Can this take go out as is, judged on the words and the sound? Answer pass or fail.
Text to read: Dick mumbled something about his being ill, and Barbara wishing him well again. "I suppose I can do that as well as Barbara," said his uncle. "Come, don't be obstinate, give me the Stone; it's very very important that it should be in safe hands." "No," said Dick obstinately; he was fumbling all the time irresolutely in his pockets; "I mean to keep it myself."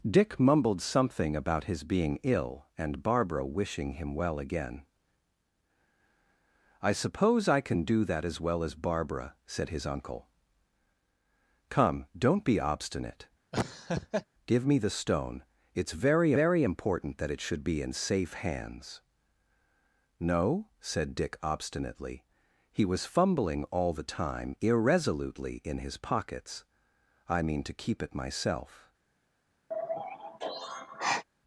fail